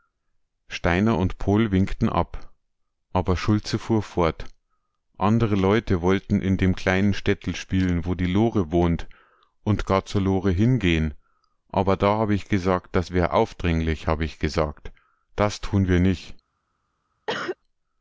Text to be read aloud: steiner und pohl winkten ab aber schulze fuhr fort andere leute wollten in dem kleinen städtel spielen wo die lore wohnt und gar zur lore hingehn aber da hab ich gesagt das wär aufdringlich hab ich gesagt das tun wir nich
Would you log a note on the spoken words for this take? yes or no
no